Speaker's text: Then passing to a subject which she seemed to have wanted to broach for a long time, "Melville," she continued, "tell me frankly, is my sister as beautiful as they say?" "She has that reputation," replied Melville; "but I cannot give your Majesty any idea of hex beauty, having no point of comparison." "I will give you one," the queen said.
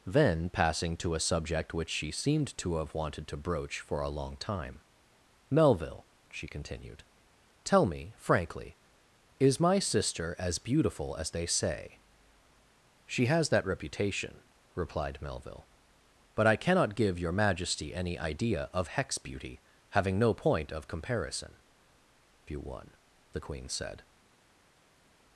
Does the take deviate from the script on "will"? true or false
true